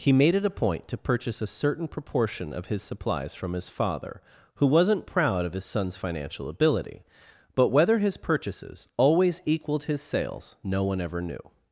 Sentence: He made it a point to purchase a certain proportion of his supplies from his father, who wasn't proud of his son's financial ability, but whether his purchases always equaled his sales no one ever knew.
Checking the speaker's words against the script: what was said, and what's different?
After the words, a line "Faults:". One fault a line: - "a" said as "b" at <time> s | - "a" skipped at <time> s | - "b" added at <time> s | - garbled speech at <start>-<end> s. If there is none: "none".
He made it a point to purchase a certain proportion of his supplies from his father, who wasn't proud of his son's financial ability, but whether his purchases always equaled his sales no one ever knew.
Faults:
none